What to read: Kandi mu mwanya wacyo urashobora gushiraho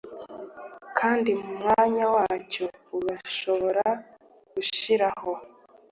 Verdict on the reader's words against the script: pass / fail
pass